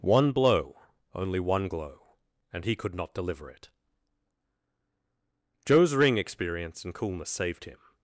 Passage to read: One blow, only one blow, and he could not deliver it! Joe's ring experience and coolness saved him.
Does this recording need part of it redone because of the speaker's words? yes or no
yes